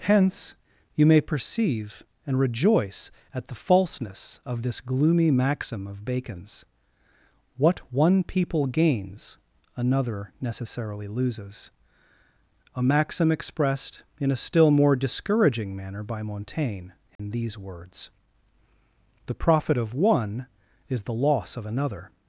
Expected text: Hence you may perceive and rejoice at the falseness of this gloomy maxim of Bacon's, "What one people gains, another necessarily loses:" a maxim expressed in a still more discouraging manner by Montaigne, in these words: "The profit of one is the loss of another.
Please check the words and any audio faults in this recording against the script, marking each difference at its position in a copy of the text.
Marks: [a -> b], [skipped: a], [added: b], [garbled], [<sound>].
Hence you may perceive and rejoice at the falseness of this gloomy maxim of Bacon's, "What one people gains, another necessarily loses:" a maxim expressed in a still more discouraging manner by Montaigne, in [dropout] these words: "The profit of one is the loss of another.